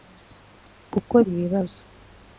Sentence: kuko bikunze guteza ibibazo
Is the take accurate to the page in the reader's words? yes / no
no